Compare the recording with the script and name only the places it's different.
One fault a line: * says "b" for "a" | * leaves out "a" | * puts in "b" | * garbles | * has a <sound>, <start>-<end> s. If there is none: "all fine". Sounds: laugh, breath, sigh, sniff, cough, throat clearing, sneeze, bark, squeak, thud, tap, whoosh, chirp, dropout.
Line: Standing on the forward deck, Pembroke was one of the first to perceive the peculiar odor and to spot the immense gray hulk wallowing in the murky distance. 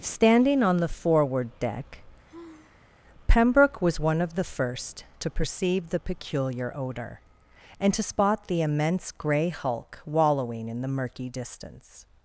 * has a sigh, 2.2-3.0 s